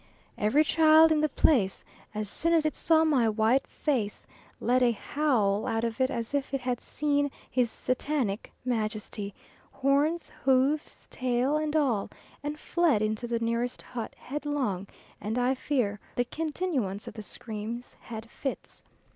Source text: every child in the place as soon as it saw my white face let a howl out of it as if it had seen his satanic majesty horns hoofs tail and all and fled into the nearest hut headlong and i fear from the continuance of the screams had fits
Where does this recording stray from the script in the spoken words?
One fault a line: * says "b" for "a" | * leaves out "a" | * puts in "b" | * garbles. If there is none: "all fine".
* leaves out "from"